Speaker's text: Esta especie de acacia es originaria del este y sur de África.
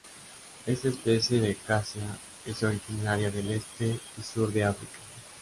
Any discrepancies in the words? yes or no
no